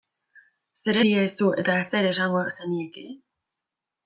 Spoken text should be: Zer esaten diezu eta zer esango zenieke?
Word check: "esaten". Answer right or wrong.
wrong